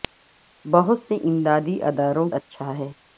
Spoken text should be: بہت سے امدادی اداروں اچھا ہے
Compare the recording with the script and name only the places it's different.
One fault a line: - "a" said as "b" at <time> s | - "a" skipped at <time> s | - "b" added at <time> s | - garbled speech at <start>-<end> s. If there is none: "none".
none